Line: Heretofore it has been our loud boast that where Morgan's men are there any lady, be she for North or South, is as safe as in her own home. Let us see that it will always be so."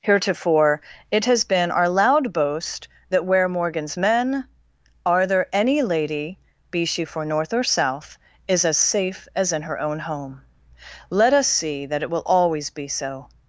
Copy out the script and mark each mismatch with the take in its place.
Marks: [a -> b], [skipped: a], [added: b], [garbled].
Heretofore it has been our loud boast that where Morgan's men are there any lady, be she for North or South, is as safe as in her own home. Let us see that it will always be so."